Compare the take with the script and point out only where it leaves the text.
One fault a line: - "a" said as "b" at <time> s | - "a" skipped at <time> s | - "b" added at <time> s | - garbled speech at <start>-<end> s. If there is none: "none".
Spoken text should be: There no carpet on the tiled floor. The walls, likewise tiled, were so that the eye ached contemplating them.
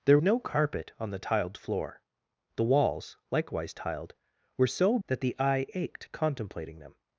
none